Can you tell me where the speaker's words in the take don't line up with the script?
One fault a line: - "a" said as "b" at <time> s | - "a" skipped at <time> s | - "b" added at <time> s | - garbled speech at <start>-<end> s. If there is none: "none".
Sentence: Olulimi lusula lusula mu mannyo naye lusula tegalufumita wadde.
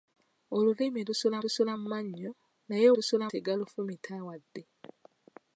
none